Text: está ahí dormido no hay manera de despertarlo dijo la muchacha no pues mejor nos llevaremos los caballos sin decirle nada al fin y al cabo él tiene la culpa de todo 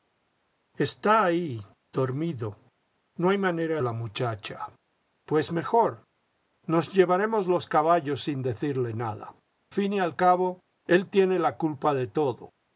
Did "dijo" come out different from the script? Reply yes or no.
yes